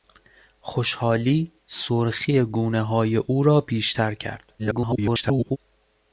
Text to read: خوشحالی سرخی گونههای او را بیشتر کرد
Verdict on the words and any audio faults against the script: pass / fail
fail